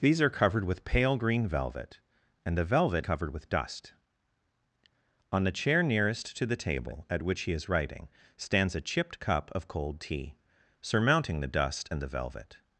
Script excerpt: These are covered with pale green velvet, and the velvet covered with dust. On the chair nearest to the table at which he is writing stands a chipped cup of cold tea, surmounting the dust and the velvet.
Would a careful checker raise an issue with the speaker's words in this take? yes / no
no